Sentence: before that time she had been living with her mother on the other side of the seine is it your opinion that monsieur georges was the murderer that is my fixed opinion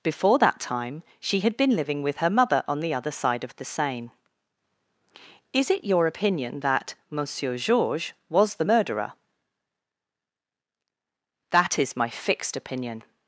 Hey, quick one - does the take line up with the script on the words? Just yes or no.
yes